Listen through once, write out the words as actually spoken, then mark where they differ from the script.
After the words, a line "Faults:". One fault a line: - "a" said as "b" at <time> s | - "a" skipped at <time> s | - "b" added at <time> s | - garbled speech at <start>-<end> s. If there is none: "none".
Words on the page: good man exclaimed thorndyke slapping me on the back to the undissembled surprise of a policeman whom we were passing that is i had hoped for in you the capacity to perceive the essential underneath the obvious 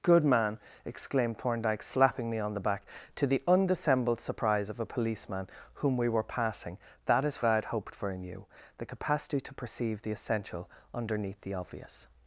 good man exclaimed thorndyke slapping me on the back to the undissembled surprise of a policeman whom we were passing that is i had hoped for in you the capacity to perceive the essential underneath the obvious
Faults:
none